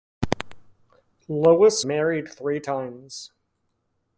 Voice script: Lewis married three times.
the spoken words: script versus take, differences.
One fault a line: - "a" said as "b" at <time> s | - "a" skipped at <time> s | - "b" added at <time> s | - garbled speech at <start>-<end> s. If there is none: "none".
none